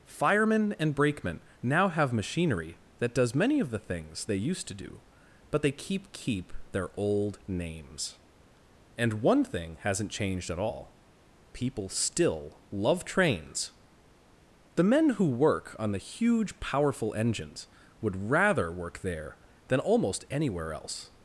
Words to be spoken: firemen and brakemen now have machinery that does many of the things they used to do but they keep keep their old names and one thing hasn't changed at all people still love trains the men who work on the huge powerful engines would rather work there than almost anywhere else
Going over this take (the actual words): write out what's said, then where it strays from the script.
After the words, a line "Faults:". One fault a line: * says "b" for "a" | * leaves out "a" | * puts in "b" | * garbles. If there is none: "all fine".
firemen and brakemen now have machinery that does many of the things they used to do but they keep keep their old names and one thing hasn't changed at all people still love trains the men who work on the huge powerful engines would rather work there than almost anywhere else
Faults:
all fine